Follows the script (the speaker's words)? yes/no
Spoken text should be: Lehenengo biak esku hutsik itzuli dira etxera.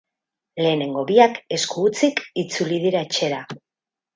yes